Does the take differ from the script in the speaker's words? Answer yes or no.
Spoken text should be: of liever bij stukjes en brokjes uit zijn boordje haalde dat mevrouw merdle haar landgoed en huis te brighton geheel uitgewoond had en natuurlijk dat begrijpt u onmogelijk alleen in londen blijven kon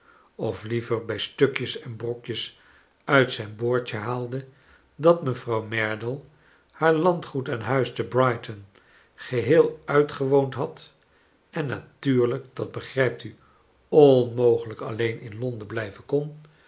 no